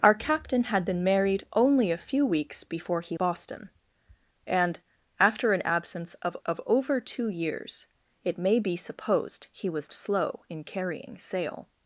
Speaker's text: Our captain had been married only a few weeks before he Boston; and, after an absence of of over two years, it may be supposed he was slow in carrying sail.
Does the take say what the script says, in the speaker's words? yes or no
yes